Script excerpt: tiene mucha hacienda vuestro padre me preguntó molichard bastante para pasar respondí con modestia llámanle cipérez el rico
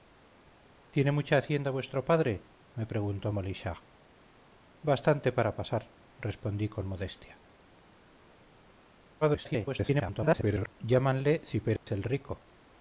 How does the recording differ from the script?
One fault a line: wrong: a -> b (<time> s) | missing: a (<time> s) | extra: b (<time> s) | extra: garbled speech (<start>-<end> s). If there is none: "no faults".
extra: garbled speech (9.2-10.7 s)